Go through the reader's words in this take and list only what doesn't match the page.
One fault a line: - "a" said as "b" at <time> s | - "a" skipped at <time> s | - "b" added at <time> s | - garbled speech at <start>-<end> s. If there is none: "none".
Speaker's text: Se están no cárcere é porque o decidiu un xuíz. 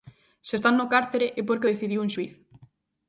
none